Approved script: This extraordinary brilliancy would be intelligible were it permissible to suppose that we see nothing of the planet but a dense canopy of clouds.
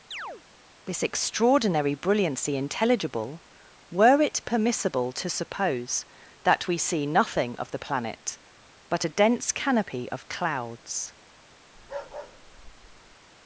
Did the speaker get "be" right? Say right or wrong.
wrong